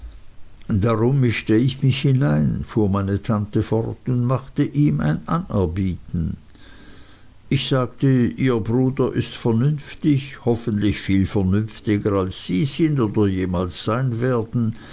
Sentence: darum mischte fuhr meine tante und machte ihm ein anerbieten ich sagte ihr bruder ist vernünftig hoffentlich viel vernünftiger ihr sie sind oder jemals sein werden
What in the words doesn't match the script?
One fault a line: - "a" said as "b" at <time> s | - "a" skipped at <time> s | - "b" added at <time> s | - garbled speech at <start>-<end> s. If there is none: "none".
- "ich mich hinein" added at 1.6 s
- "fort" added at 3.6 s
- "ihr" said as "als" at 12.1 s